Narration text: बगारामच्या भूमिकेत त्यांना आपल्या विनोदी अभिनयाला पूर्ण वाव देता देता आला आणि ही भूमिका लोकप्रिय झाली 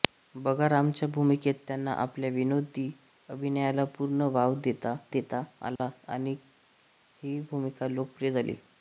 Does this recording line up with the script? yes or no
yes